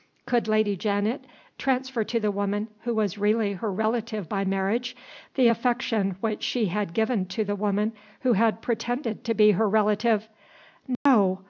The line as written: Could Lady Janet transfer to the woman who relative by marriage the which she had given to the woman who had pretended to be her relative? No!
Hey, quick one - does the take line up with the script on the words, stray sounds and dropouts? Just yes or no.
no